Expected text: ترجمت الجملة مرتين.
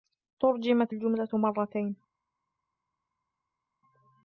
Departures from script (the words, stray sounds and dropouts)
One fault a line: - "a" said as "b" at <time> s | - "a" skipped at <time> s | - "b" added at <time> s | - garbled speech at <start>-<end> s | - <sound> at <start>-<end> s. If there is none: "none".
none